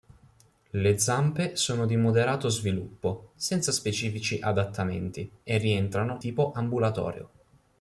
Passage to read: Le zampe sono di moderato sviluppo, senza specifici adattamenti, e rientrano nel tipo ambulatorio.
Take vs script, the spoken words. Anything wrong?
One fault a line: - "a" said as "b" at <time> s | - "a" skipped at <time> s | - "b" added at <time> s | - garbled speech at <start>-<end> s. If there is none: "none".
- "nel" skipped at 6.2 s